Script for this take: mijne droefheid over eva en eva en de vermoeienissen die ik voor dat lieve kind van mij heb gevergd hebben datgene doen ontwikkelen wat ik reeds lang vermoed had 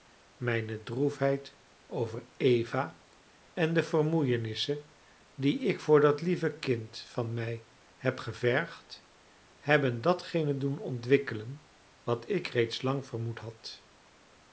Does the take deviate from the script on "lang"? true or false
false